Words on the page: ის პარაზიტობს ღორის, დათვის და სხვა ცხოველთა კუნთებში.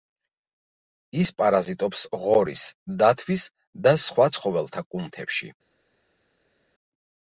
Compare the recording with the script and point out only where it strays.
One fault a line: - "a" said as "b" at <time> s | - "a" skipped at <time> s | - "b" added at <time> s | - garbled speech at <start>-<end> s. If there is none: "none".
none